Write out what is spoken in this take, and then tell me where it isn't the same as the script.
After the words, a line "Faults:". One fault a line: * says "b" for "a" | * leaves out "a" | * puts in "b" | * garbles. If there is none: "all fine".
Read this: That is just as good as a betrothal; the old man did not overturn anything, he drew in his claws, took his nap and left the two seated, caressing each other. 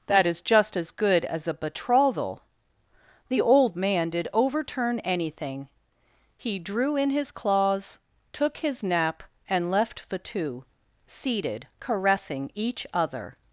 That is just as good as a betrothal; the old man did overturn anything, he drew in his claws, took his nap and left the two seated, caressing each other.
Faults:
* leaves out "not"